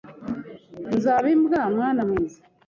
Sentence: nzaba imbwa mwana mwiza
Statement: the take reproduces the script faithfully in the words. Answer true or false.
true